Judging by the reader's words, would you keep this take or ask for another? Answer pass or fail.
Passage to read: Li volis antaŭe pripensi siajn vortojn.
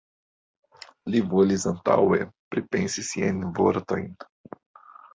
pass